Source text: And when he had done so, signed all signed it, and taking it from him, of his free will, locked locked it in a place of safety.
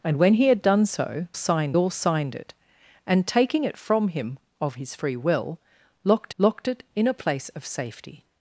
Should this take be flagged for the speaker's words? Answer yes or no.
no